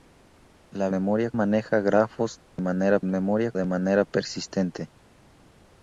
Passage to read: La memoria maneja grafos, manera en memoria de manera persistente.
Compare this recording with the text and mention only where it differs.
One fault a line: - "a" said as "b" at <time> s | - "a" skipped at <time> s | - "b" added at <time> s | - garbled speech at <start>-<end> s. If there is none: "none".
none